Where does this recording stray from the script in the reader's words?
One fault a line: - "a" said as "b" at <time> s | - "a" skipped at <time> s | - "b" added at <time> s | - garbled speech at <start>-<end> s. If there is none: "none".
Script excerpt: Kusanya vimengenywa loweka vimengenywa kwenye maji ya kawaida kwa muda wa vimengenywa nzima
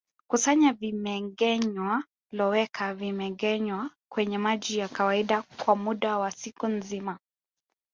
- "vimengenywa" said as "siku" at 6.3 s